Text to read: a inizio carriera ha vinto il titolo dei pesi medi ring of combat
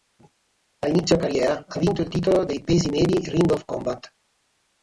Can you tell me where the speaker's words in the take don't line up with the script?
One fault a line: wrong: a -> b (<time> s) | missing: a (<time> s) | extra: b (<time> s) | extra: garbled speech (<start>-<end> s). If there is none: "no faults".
no faults